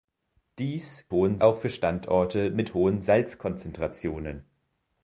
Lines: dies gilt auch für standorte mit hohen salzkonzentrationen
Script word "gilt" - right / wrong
wrong